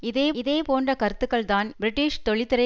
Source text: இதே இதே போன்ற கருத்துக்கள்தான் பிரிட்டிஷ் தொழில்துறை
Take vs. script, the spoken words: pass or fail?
pass